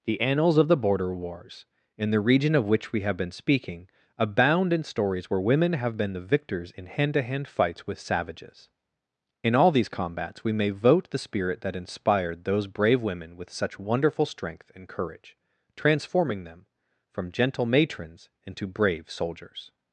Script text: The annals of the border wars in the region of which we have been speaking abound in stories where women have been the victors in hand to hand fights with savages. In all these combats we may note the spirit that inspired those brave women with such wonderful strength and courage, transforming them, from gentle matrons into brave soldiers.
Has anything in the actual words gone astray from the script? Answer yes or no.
yes